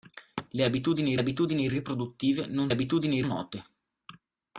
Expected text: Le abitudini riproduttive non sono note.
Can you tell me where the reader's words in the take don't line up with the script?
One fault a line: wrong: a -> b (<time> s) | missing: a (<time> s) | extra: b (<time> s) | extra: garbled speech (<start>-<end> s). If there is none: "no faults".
extra: abitudini (1.2 s)
wrong: sono -> abitudini (2.7 s)